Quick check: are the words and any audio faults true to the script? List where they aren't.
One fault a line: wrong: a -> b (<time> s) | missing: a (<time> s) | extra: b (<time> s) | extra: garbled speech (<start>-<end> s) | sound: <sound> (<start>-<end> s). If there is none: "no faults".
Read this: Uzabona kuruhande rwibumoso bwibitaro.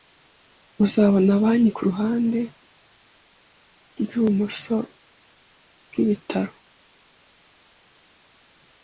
extra: banki (1.4 s)